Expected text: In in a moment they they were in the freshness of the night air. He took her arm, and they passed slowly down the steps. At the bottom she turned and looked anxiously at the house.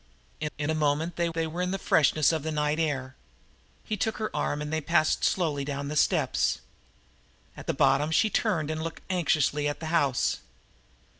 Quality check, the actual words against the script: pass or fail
pass